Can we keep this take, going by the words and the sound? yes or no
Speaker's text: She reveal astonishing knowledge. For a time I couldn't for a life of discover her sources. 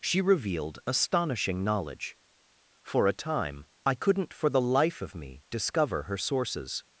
no